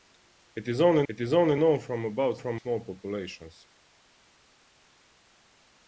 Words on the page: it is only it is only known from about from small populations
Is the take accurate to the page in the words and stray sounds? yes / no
yes